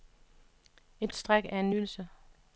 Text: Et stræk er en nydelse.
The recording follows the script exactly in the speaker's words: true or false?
true